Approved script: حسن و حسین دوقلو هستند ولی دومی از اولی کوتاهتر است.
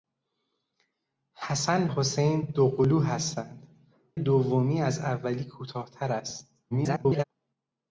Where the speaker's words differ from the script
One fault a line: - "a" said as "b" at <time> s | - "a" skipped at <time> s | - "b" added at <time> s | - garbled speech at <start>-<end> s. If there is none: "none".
- "و" skipped at 1.9 s
- "ولی" skipped at 3.7 s
- garbled speech at 6.7-7.2 s